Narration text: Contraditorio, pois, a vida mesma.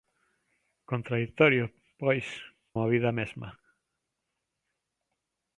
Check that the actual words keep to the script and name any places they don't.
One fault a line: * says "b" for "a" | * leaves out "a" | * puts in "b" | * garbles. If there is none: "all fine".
all fine